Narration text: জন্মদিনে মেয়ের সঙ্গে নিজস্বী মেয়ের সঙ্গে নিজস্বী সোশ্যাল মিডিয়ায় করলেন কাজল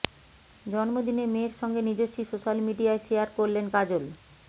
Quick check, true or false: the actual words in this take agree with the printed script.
false